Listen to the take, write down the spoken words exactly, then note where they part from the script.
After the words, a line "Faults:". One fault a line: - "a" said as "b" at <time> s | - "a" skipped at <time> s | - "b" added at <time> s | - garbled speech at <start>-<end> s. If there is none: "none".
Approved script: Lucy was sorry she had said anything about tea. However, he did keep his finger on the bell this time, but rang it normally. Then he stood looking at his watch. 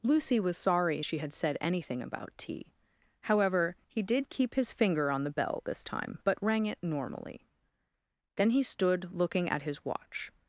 Lucy was sorry she had said anything about tea. However, he did keep his finger on the bell this time, but rang it normally. Then he stood looking at his watch.
Faults:
none